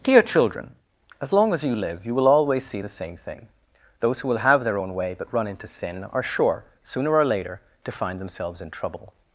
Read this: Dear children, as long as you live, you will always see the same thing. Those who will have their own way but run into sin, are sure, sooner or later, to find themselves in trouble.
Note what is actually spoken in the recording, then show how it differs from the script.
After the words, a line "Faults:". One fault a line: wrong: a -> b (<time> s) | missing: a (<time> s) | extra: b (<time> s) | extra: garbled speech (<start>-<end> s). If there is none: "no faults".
Dear children, as long as you live, you will always see the same thing. Those who will have their own way but run into sin, are sure, sooner or later, to find themselves in trouble.
Faults:
no faults